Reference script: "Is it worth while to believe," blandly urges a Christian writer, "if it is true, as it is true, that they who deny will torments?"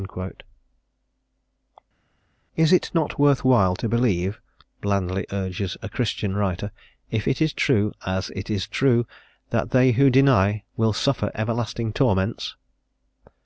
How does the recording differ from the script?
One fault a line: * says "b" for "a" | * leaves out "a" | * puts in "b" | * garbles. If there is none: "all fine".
* puts in "not"
* puts in "suffer everlasting"